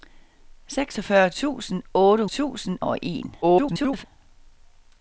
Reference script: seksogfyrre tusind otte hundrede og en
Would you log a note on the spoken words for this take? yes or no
yes